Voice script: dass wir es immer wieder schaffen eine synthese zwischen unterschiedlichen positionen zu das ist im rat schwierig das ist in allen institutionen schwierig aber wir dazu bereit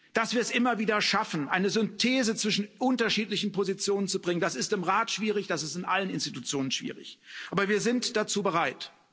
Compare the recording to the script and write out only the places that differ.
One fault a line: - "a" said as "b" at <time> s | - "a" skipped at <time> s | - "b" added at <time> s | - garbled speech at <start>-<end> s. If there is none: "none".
- "bringen" added at 4.2 s
- "sind" added at 7.8 s